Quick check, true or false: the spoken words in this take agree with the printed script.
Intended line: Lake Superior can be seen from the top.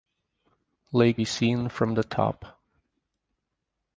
false